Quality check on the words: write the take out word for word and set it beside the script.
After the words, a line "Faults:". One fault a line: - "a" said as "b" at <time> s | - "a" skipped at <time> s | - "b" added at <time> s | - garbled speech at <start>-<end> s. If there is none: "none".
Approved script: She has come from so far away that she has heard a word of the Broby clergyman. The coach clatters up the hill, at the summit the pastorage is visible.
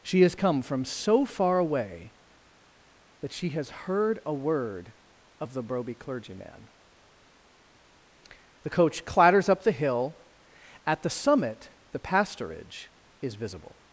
She has come from so far away that she has heard a word of the Broby clergyman. The coach clatters up the hill, at the summit the pastorage is visible.
Faults:
none